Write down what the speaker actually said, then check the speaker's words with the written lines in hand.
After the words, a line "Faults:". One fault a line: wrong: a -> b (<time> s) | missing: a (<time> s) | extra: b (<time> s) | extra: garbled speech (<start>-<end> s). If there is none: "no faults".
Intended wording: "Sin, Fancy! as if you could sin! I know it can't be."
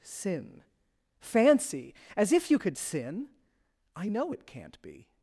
"Sin, Fancy! as if you could sin! I know it can't be."
Faults:
no faults